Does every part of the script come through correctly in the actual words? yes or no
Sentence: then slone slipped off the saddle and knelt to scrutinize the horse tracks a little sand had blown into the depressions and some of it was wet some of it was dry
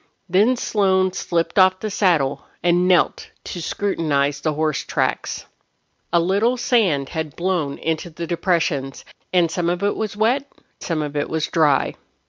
yes